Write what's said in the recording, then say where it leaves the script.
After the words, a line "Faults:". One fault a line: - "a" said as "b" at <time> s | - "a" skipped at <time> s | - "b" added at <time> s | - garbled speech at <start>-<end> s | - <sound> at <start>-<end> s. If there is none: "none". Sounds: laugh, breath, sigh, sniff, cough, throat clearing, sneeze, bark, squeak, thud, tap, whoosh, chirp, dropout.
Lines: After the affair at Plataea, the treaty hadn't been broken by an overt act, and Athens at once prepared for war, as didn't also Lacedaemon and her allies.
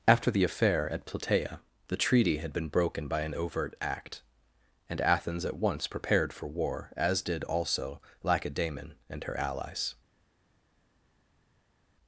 After the affair at Plataea, the treaty had been broken by an overt act, and Athens at once prepared for war, as did also Lacedaemon and her allies.
Faults:
- "hadn't" said as "had" at 2.4 s
- "didn't" said as "did" at 7.2 s